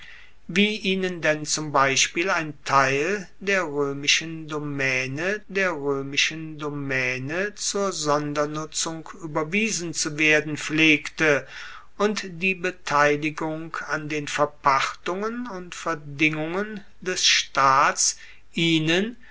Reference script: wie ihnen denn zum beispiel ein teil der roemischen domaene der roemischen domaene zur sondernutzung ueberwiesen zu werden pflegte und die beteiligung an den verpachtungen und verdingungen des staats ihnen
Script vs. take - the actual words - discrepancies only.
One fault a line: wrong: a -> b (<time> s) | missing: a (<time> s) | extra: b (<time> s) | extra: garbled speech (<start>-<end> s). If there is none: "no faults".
no faults